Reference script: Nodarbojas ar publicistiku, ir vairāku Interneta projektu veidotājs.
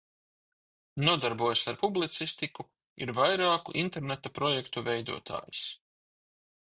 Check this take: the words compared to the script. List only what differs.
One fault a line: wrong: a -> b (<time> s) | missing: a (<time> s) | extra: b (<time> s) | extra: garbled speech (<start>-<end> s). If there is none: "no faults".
no faults